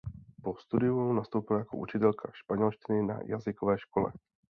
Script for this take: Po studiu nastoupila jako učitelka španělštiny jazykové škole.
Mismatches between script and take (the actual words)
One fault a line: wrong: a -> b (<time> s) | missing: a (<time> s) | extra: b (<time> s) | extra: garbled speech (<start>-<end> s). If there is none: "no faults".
extra: na (3.0 s)